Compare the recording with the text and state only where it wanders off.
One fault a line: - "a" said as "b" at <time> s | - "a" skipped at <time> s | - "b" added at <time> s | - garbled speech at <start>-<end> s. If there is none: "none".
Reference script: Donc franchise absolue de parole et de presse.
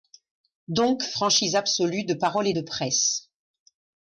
none